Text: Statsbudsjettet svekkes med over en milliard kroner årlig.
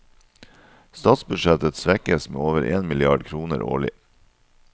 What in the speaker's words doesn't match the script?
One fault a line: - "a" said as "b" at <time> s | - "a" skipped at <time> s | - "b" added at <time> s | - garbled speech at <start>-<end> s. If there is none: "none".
none